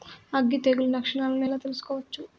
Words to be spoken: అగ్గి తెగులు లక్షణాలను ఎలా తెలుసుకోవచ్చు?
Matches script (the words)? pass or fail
pass